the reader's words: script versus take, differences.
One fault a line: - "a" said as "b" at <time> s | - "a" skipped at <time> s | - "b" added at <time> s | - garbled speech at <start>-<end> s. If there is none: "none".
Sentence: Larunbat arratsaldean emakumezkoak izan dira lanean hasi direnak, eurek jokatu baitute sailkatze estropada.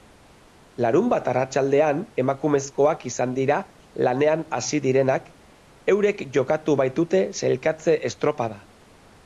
none